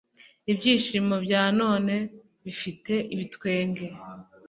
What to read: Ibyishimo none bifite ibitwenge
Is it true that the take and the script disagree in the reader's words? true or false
true